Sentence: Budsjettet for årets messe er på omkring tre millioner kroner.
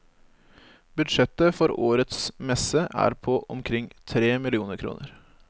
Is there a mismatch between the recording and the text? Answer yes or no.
no